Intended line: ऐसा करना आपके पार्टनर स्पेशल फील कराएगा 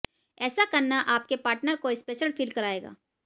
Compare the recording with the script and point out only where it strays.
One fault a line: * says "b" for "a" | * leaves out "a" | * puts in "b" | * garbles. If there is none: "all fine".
* puts in "को"